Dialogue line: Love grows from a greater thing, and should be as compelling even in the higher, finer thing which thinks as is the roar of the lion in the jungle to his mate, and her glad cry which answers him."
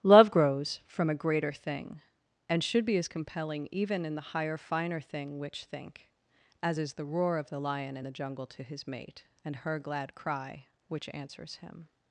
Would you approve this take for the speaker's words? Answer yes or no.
no